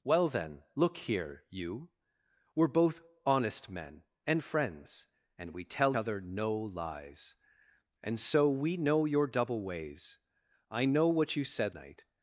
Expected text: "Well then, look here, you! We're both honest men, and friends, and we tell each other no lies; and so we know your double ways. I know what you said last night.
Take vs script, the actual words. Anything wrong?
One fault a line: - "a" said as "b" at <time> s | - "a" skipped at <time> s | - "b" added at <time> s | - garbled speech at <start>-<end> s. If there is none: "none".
- "each" skipped at 6.0 s
- "last" skipped at 11.8 s